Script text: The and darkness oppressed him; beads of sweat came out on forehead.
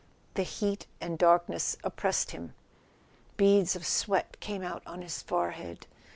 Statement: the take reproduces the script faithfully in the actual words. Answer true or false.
false